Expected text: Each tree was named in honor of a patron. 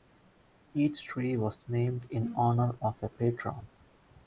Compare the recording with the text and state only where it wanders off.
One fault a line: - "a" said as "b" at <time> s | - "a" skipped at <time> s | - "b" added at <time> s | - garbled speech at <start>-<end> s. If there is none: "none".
none